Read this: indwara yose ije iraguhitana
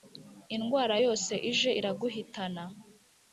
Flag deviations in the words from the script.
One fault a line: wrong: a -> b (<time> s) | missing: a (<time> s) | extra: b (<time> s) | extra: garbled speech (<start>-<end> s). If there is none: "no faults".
no faults